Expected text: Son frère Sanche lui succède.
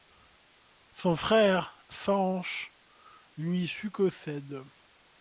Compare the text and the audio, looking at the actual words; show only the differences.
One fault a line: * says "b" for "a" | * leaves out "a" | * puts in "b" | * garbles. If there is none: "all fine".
all fine